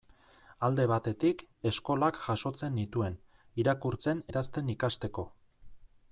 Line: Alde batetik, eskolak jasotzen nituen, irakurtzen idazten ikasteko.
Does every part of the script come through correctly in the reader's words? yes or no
yes